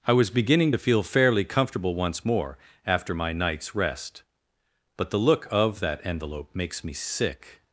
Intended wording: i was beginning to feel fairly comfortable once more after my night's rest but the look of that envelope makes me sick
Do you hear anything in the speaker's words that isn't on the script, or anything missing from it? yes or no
no